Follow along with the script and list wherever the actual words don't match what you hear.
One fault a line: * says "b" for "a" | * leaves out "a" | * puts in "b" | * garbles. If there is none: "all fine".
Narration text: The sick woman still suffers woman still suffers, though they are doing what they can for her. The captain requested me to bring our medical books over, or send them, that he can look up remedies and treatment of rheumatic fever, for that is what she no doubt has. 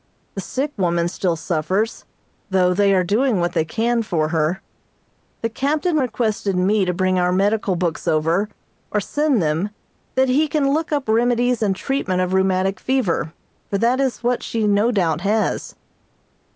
* leaves out "woman still suffers"